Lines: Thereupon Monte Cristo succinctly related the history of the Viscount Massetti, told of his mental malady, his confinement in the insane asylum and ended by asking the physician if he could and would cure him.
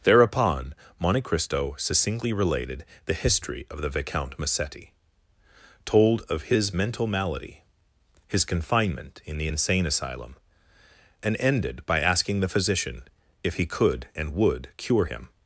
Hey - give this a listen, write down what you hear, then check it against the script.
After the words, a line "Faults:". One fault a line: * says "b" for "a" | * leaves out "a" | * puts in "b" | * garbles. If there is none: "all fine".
Thereupon Monte Cristo succinctly related the history of the Viscount Massetti, told of his mental malady, his confinement in the insane asylum and ended by asking the physician if he could and would cure him.
Faults:
all fine